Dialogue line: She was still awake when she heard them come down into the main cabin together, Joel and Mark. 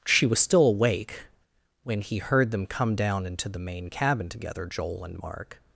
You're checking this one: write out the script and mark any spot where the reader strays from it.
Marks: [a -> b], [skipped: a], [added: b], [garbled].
She was still awake when [she -> he] heard them come down into the main cabin together, Joel and Mark.